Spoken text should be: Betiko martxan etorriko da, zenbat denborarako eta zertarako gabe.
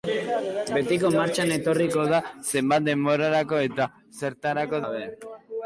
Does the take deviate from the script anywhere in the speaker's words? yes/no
no